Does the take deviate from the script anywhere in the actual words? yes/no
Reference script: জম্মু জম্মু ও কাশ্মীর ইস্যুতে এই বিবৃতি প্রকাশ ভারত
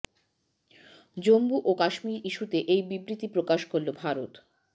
yes